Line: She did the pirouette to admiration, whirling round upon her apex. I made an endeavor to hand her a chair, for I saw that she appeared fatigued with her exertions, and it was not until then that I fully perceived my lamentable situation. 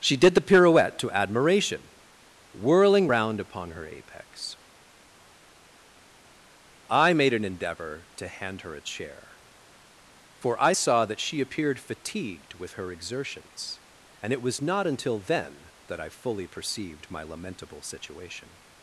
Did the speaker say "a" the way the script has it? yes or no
yes